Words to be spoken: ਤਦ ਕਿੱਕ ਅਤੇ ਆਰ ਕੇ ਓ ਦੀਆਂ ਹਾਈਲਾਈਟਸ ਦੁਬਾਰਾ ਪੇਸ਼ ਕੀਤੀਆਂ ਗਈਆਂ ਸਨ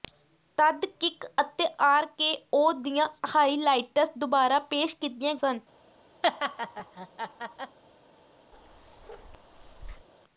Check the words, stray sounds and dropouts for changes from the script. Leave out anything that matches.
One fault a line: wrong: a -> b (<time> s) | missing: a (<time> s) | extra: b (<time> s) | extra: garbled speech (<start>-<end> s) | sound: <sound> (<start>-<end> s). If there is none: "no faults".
missing: ਗਈਆਂ (5.3 s)
sound: laugh (6.2-7.8 s)
sound: bark (8.5-10.1 s)